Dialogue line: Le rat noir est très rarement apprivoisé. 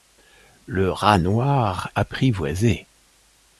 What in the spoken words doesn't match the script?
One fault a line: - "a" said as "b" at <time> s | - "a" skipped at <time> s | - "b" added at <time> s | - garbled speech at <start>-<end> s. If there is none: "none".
- "est très rarement" skipped at 1.9 s